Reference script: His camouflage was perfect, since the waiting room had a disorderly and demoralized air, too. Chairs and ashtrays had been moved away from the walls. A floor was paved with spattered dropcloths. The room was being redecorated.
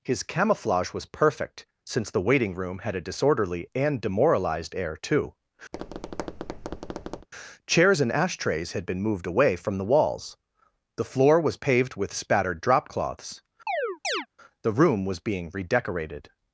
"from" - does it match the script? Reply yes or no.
yes